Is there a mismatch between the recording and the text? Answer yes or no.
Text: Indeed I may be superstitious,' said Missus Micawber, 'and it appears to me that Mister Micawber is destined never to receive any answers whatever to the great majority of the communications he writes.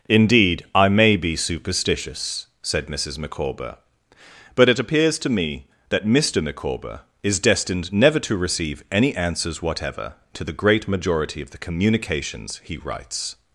yes